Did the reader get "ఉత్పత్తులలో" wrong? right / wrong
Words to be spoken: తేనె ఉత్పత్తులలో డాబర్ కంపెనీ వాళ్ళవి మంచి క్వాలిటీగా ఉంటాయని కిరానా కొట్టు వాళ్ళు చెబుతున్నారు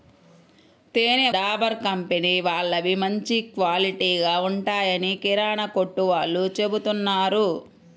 wrong